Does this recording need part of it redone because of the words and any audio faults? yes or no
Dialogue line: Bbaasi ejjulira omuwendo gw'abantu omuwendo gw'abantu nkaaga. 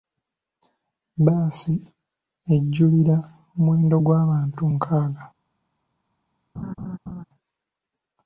yes